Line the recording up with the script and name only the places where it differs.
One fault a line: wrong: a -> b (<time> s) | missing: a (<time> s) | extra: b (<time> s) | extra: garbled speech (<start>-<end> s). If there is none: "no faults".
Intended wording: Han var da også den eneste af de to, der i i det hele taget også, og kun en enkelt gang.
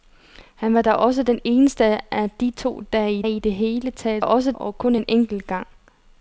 no faults